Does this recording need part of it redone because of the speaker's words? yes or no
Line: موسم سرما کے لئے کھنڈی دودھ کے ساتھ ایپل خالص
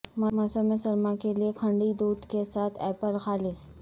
no